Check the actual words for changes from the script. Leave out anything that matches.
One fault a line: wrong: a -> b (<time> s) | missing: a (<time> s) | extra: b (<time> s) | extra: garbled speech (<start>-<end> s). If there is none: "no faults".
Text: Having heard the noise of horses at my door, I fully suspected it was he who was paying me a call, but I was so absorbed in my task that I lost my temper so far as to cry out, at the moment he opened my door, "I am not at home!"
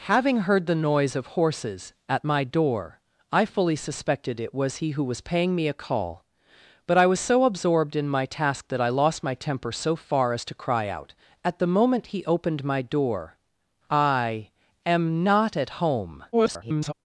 extra: garbled speech (16.3-16.9 s)